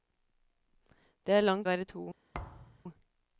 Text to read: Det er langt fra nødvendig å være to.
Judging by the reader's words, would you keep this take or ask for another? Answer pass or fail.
fail